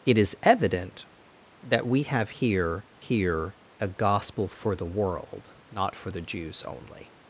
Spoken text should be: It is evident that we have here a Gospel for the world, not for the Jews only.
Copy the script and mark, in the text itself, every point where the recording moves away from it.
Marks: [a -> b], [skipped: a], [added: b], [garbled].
It is evident that we have here [added: here] a Gospel for the world, not for the Jews only.